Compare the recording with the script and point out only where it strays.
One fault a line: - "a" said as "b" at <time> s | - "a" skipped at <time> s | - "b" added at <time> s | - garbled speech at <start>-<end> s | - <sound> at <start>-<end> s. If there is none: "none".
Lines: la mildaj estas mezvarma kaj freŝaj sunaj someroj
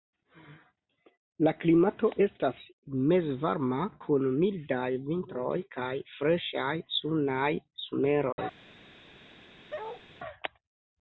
- "mildaj" said as "klimato" at 1.6 s
- "kun mildaj vintroj" added at 4.0 s
- dropout at 8.3-8.4 s
- bark at 9.7-10.0 s